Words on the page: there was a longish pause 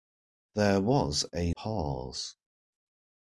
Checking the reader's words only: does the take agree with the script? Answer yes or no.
no